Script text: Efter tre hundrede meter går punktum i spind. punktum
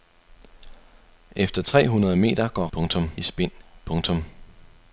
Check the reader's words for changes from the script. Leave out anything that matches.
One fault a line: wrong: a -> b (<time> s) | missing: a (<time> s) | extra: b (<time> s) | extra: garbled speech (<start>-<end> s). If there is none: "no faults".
no faults